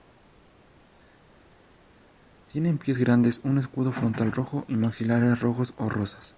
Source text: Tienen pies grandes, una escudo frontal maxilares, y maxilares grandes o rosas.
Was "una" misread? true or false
true